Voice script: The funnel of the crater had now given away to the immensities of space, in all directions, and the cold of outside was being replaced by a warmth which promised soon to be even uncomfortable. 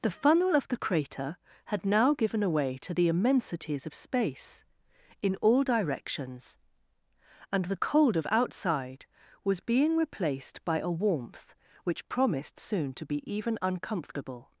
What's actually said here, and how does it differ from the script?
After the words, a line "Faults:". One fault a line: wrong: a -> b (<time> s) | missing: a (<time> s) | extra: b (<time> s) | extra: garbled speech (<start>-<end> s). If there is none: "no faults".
The funnel of the crater had now given away to the immensities of space, in all directions, and the cold of outside was being replaced by a warmth which promised soon to be even uncomfortable.
Faults:
no faults